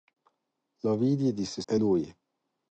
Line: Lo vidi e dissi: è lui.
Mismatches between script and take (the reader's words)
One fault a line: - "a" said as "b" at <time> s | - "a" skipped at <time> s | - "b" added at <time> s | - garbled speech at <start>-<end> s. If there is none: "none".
none